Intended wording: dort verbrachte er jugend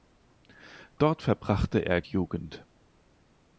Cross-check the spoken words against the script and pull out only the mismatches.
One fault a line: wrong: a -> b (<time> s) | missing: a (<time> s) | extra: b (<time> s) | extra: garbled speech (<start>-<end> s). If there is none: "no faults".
no faults